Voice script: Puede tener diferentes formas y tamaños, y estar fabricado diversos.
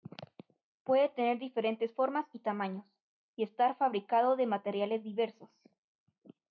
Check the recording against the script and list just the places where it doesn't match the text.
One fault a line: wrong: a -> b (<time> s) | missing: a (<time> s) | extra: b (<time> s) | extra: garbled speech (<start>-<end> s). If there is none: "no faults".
extra: de materiales (4.3 s)